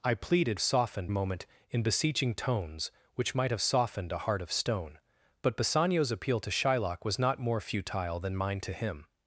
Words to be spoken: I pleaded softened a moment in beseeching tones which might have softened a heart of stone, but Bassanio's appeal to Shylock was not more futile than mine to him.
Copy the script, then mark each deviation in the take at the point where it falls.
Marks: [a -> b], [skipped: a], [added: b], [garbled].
I pleaded softened a moment in beseeching tones which might have softened a heart of stone, but Bassanio's appeal to Shylock was not more futile than mine to him.